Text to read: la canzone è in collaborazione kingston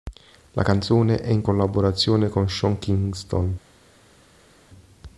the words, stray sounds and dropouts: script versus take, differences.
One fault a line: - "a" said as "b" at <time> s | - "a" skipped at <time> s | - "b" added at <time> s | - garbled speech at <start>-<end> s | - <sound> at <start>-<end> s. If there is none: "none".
- "con sean" added at 2.3 s